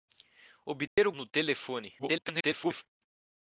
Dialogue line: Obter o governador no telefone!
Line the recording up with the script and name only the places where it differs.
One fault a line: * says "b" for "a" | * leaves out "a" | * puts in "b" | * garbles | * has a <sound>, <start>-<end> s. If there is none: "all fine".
* has a dropout, 0.9-1.0 s
* leaves out "governador"
* garbles